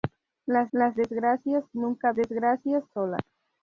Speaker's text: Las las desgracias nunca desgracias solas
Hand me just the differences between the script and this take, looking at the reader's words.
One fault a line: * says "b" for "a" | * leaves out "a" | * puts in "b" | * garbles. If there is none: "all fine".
all fine